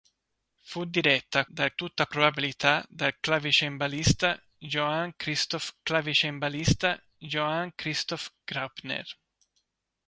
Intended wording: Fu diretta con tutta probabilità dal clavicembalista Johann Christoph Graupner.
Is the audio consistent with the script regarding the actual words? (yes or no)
no